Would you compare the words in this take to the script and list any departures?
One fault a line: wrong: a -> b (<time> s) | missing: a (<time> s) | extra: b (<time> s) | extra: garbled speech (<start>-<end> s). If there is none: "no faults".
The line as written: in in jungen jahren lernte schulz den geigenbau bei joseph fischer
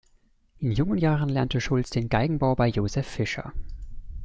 missing: in (0.7 s)